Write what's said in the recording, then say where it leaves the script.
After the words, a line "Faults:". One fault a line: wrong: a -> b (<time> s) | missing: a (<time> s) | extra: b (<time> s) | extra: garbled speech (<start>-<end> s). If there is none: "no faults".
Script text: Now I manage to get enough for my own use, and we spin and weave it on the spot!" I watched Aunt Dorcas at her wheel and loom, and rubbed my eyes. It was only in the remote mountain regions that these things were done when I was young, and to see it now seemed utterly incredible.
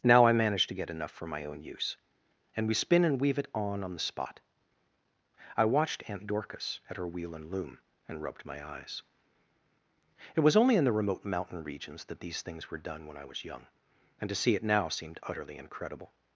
Now I manage to get enough for my own use, and we spin and weave it on on the spot!" I watched Aunt Dorcas at her wheel and loom, and rubbed my eyes. It was only in the remote mountain regions that these things were done when I was young, and to see it now seemed utterly incredible.
Faults:
extra: on (3.8 s)